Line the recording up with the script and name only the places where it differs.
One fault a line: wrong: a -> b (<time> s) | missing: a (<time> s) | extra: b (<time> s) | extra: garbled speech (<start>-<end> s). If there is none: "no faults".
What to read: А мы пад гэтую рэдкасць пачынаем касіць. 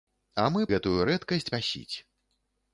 missing: пад (0.6 s)
missing: пачынаем (1.5 s)